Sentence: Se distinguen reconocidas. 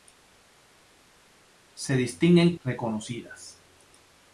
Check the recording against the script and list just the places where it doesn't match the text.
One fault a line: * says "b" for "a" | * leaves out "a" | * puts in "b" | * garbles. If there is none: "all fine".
all fine